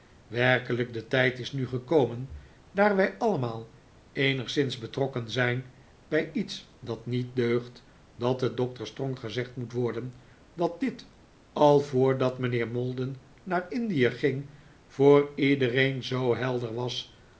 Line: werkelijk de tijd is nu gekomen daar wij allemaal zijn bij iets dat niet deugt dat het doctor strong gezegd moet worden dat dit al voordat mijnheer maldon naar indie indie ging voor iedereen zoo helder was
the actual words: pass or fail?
fail